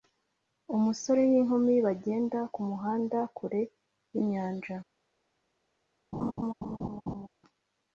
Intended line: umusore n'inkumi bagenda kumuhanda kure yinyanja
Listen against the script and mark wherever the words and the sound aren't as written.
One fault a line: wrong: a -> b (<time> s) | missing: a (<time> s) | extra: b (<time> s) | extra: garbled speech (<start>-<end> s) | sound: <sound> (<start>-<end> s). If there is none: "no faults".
sound: laugh (6.1-7.3 s)